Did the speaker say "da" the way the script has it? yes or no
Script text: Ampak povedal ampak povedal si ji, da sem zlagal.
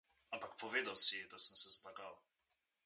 yes